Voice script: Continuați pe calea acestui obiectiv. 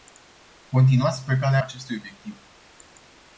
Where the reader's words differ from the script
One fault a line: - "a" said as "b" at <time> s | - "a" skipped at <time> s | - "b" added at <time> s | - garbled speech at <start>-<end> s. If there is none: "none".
none